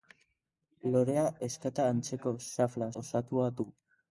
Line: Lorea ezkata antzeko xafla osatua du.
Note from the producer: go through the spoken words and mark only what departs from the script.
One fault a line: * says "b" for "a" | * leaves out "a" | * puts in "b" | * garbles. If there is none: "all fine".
all fine